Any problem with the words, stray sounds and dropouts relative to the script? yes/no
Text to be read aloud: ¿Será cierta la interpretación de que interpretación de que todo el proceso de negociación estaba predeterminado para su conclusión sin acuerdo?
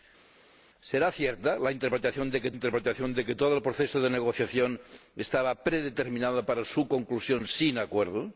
no